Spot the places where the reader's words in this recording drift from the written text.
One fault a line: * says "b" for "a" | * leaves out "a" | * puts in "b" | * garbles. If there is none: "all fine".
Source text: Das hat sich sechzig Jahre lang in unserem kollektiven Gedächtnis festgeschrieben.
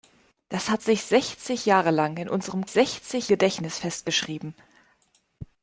* says "sechzig" for "kollektiven"